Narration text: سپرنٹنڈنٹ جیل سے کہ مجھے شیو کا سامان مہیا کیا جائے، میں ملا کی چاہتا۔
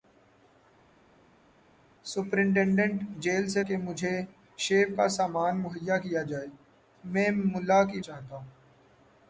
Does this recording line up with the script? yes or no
yes